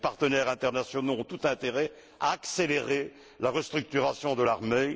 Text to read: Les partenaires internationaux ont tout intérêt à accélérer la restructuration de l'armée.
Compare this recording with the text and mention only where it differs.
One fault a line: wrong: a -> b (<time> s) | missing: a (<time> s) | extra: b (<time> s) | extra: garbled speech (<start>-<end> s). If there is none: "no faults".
no faults